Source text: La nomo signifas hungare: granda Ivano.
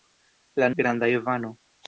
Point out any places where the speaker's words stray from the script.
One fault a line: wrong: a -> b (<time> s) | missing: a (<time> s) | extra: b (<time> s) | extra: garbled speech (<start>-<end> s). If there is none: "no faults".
missing: nomo signifas hungare (0.7 s)